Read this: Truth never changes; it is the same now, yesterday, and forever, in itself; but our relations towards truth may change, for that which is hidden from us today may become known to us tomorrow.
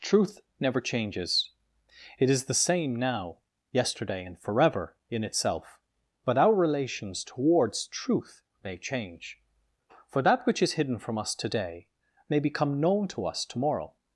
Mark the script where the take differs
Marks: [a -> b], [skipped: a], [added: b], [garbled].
Truth never changes; it is the same now, yesterday, and forever, in itself; but our relations towards truth may change, for that which is hidden from us today may become known to us tomorrow.